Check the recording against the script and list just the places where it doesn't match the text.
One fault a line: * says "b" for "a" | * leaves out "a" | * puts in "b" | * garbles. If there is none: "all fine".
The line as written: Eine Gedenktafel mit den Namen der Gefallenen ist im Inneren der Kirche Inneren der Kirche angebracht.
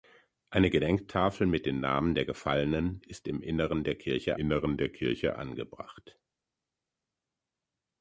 all fine